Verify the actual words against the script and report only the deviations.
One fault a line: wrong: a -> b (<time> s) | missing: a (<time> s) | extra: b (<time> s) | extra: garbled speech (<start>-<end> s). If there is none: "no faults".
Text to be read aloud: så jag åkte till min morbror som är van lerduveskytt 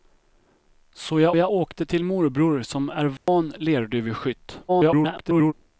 extra: jag (1.4 s)
missing: min (2.0 s)
extra: garbled speech (4.7-5.5 s)